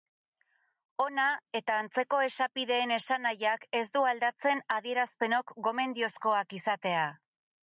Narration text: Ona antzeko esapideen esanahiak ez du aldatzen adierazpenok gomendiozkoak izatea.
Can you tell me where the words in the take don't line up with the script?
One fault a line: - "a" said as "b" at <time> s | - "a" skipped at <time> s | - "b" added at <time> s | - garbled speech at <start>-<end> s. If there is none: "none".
- "eta" added at 1.6 s